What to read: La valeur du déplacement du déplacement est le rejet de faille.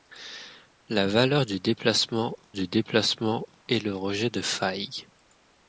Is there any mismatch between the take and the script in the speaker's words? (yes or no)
no